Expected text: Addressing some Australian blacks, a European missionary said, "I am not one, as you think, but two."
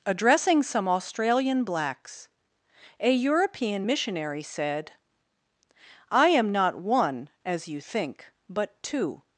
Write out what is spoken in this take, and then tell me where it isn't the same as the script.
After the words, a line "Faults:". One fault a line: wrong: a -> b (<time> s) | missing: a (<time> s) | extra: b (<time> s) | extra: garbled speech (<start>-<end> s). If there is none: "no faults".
Addressing some Australian blacks, a European missionary said, "I am not one, as you think, but two."
Faults:
no faults